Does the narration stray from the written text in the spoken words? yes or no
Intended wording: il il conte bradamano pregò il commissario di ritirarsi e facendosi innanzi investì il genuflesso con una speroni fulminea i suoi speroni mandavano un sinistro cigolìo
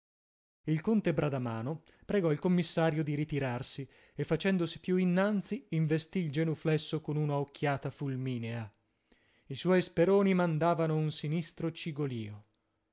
yes